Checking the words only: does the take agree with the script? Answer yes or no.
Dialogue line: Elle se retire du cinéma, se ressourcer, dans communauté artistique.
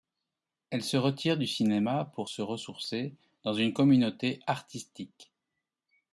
no